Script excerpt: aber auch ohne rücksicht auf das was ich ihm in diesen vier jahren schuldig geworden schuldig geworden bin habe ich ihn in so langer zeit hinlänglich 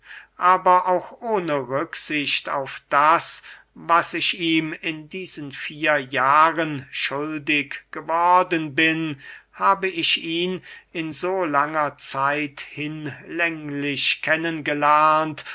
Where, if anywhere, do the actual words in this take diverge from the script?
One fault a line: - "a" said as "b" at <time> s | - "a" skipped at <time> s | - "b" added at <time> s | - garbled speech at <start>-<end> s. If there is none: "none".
- "schuldig geworden" skipped at 8.7 s